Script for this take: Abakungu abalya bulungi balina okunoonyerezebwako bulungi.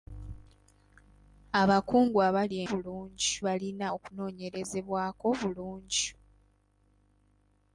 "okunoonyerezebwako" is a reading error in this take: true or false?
false